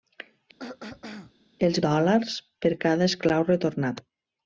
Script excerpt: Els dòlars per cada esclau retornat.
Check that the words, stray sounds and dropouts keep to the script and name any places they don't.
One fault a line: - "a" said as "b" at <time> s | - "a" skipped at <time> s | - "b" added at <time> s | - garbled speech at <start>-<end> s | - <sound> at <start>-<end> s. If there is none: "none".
- throat clearing at 0.6-1.3 s